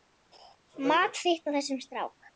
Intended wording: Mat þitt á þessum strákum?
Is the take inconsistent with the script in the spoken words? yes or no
no